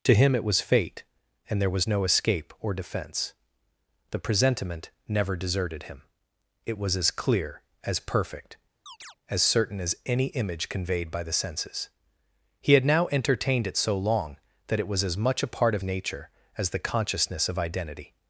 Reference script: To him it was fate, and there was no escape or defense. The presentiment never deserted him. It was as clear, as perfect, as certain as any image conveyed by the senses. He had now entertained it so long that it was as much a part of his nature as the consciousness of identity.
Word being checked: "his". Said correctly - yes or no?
no